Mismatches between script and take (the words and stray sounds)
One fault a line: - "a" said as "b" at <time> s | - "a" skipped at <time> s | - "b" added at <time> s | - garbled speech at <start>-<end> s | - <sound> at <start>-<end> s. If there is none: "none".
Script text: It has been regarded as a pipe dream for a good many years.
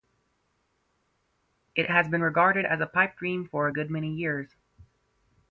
none